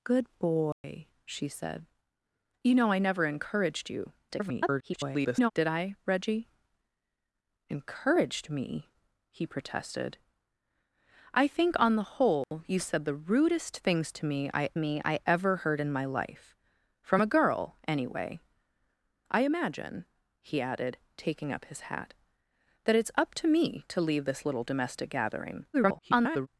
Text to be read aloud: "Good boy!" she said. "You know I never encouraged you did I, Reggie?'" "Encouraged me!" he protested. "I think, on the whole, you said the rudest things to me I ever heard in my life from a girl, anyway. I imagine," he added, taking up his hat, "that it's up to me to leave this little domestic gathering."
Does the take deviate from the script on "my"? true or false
false